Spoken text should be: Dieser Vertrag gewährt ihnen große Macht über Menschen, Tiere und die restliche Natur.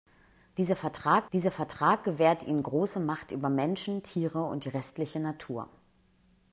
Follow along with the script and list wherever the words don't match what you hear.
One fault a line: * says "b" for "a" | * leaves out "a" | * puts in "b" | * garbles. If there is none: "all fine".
* puts in "dieser Vertrag"